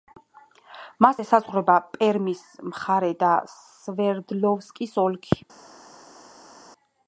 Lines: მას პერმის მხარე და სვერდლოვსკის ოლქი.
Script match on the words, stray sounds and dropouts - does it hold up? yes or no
no